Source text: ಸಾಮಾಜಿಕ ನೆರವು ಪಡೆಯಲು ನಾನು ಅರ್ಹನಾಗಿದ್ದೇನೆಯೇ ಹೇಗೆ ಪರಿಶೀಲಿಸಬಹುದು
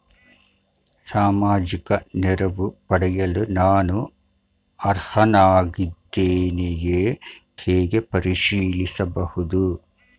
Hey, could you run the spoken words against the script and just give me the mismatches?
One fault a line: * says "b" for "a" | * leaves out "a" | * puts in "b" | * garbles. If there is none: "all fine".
all fine